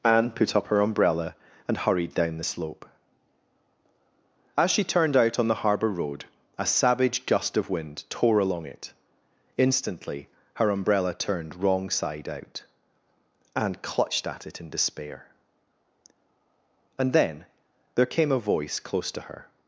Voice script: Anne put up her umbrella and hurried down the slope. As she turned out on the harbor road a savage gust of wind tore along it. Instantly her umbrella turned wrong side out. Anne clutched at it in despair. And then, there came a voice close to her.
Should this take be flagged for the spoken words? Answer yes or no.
no